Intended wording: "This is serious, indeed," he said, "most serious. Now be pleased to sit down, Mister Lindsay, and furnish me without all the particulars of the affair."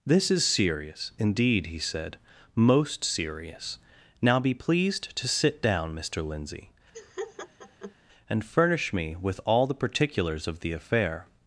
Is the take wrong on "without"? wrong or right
wrong